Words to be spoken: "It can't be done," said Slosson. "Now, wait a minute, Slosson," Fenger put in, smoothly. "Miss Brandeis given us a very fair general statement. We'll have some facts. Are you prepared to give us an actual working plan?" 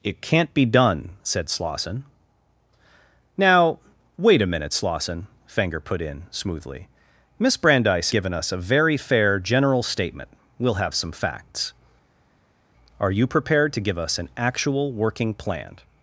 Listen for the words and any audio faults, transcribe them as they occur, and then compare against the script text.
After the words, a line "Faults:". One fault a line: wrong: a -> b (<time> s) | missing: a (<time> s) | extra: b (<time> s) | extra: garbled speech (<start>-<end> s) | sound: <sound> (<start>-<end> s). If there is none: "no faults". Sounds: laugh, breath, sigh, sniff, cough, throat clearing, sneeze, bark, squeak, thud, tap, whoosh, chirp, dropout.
"It can't be done," said Slosson. "Now, wait a minute, Slosson," Fenger put in, smoothly. "Miss Brandeis given us a very fair general statement. We'll have some facts. Are you prepared to give us an actual working plan?"
Faults:
no faults